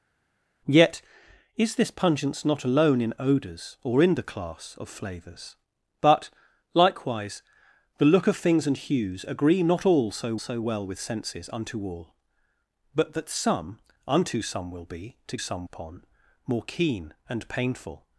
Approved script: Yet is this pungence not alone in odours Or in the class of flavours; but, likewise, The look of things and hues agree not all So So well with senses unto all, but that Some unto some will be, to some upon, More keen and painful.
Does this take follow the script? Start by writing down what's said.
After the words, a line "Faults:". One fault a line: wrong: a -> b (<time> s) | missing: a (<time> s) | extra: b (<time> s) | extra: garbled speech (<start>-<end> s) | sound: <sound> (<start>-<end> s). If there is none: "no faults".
Yet is this pungence not alone in odours Or in the class of flavours; but, likewise, The look of things and hues agree not all So So well with senses unto all, but that Some unto some will be, to some upon, More keen and painful.
Faults:
no faults